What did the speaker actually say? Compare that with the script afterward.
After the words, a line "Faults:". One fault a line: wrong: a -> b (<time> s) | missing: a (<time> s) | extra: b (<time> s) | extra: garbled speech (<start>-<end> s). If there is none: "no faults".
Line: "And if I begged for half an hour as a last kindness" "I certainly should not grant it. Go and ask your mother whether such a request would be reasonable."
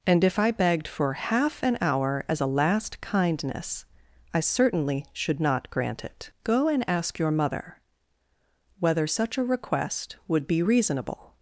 "And if I begged for half an hour as a last kindness" "I certainly should not grant it. Go and ask your mother whether such a request would be reasonable."
Faults:
no faults